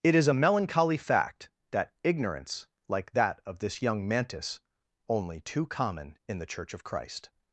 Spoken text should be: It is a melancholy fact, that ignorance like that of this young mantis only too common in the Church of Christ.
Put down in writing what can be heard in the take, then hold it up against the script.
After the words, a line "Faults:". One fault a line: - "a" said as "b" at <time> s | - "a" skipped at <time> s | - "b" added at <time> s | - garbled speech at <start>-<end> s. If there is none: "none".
It is a melancholy fact, that ignorance like that of this young mantis only too common in the Church of Christ.
Faults:
none